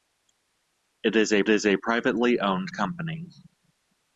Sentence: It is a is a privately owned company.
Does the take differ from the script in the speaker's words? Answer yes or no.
no